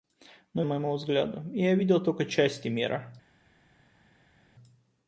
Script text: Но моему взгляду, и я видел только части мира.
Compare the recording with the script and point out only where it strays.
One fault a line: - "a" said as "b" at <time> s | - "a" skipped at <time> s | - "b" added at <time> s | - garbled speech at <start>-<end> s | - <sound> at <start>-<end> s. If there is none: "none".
none